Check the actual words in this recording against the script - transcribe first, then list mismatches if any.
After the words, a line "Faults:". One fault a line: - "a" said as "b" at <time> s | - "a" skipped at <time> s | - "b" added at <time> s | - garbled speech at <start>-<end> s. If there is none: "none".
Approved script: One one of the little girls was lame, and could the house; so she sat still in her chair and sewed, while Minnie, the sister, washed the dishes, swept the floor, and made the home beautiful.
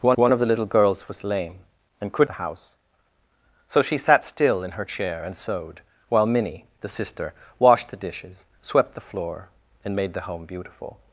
One one of the little girls was lame, and could the house; so she sat still in her chair and sewed, while Minnie, the sister, washed the dishes, swept the floor, and made the home beautiful.
Faults:
none